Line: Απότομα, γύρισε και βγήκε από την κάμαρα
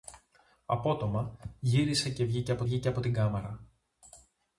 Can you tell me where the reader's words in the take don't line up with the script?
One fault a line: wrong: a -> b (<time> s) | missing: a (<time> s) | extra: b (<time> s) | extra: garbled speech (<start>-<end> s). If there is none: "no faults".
extra: βγήκε από (2.6 s)